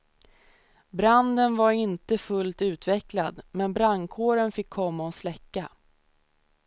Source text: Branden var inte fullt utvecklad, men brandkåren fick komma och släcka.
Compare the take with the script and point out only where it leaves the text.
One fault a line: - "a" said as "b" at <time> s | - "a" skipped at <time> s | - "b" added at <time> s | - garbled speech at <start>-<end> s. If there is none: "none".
none